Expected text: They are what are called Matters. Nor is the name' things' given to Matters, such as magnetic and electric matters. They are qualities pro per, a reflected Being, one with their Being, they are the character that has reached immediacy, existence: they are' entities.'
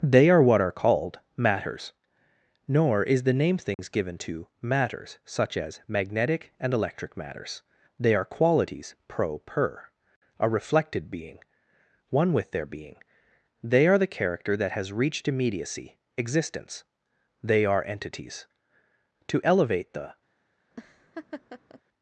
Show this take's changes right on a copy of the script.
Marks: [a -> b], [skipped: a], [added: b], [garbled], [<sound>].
They are what are called Matters. Nor is the name' things' [dropout] given to Matters, such as magnetic and electric matters. They are qualities pro per, a reflected Being, one with their Being, they are the character that has reached immediacy, existence: they are' entities.' [added: To elevate the] [laugh]